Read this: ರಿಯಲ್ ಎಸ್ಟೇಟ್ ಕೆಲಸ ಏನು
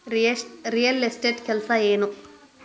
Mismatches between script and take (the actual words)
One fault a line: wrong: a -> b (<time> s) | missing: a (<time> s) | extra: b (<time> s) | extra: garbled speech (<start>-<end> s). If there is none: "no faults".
no faults